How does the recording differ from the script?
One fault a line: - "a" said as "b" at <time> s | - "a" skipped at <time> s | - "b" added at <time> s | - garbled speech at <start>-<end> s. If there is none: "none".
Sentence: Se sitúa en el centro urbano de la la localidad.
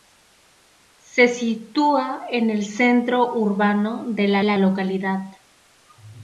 none